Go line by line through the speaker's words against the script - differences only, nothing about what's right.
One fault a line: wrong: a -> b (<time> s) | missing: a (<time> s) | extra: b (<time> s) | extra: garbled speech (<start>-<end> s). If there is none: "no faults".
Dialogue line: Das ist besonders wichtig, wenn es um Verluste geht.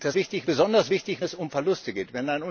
wrong: ist -> wichtig (0.1 s)
missing: wenn (1.2 s)